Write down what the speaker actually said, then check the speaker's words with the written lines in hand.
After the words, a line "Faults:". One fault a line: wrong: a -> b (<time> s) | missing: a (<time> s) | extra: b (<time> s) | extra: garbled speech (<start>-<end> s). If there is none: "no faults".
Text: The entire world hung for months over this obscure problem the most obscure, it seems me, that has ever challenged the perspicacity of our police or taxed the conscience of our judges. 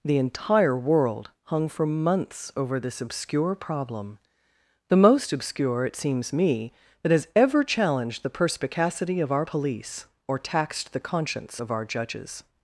The entire world hung for months over this obscure problem the most obscure, it seems me, that has ever challenged the perspicacity of our police or taxed the conscience of our judges.
Faults:
no faults